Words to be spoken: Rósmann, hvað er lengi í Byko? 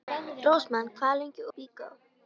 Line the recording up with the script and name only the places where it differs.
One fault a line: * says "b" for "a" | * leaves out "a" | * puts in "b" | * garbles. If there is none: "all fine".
all fine